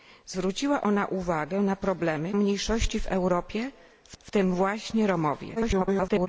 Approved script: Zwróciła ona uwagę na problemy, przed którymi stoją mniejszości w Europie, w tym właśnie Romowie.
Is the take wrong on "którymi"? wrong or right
wrong